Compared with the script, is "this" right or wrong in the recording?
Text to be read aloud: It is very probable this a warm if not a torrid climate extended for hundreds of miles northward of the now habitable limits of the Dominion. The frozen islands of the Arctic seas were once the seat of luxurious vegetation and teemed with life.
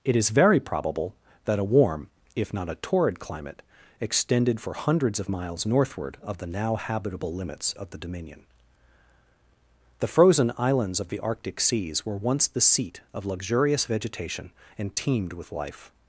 wrong